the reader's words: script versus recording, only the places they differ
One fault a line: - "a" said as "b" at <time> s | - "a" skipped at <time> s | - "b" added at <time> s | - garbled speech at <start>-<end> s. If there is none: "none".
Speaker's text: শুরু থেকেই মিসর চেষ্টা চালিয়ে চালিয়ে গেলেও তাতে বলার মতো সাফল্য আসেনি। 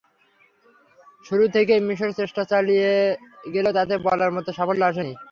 - "চালিয়ে" skipped at 2.9 s